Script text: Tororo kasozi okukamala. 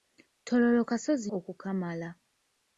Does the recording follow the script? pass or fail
pass